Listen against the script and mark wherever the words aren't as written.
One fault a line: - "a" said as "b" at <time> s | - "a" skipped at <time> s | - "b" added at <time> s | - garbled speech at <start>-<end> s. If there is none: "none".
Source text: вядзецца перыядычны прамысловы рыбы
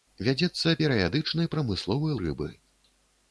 none